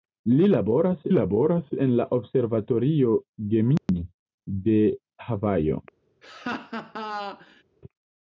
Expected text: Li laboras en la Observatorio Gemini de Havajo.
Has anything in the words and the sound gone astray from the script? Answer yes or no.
yes